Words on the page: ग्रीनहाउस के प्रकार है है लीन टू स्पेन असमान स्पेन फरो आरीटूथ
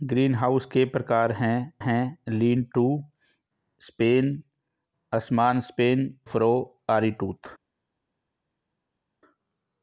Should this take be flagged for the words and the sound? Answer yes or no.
no